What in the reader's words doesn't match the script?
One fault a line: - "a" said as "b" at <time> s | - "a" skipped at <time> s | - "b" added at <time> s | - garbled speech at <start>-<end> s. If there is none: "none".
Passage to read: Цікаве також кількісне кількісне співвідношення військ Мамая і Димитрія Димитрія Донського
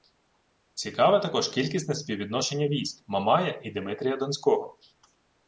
- "кількісне" skipped at 1.9 s
- "Димитрія" skipped at 4.2 s